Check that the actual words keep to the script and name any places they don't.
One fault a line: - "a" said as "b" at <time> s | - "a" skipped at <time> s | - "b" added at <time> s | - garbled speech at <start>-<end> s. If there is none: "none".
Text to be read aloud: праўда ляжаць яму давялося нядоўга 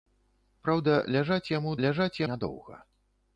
- "давялося" said as "ляжаць" at 1.9 s